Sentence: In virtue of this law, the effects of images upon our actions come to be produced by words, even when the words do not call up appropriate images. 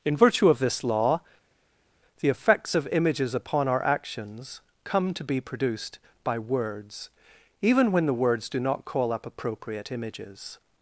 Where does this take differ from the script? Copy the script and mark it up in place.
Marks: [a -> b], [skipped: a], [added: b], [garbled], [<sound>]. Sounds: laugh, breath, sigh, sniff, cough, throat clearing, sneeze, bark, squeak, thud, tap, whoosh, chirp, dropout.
In virtue of this law, the effects of images upon our actions come to be produced by words, even when the words do not call up appropriate images.